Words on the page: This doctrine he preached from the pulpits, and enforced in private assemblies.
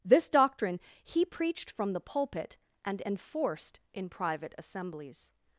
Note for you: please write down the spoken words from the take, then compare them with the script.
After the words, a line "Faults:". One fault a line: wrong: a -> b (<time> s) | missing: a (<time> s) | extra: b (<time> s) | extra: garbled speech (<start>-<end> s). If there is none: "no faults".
This doctrine he preached from the pulpit, and enforced in private assemblies.
Faults:
wrong: pulpits -> pulpit (2.0 s)